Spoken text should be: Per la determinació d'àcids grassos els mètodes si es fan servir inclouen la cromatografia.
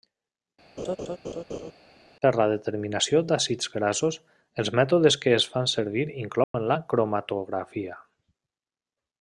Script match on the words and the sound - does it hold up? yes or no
no